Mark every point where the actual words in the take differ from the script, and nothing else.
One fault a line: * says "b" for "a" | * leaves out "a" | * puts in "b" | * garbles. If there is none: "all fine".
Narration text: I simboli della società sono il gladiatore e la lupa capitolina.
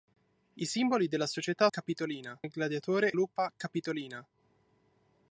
* says "capitolina" for "sono"
* leaves out "e la"